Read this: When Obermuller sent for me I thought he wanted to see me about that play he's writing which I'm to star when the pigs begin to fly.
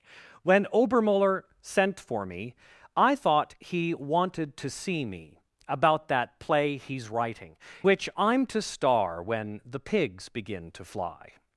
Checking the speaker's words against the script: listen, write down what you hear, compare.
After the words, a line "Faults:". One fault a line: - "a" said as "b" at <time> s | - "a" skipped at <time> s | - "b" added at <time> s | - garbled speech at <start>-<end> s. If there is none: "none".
When Obermuller sent for me I thought he wanted to see me about that play he's writing which I'm to star when the pigs begin to fly.
Faults:
none